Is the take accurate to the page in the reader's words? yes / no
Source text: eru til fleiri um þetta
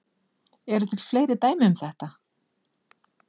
no